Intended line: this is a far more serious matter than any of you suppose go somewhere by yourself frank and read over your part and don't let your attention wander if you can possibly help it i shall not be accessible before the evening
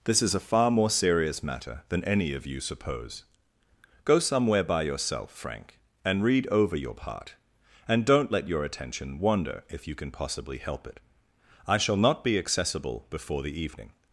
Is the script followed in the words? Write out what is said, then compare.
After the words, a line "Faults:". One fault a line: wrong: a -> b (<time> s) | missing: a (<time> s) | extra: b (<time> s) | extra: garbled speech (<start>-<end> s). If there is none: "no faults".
this is a far more serious matter than any of you suppose go somewhere by yourself frank and read over your part and don't let your attention wander if you can possibly help it i shall not be accessible before the evening
Faults:
no faults